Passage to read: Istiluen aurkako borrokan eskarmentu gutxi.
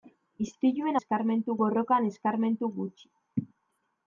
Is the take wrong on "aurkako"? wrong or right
wrong